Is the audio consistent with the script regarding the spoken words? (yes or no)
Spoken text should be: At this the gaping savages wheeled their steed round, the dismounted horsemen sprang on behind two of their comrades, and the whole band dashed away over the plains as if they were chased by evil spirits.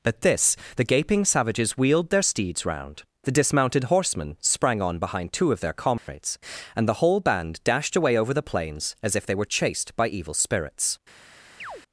no